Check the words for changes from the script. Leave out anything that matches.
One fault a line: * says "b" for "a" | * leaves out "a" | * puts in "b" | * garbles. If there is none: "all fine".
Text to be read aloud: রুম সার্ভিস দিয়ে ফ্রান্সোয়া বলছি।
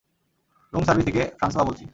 * says "থেকে" for "দিয়ে"